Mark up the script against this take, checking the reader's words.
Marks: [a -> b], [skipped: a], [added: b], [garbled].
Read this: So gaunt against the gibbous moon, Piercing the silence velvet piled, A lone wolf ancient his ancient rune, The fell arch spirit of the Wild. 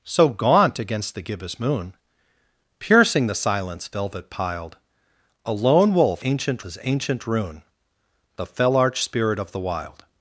So gaunt against the gibbous moon, Piercing the silence velvet piled, A lone wolf ancient his ancient rune, The fell arch spirit of the Wild.